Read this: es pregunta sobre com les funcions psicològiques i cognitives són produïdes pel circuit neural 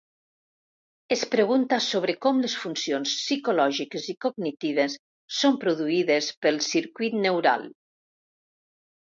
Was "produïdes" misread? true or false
false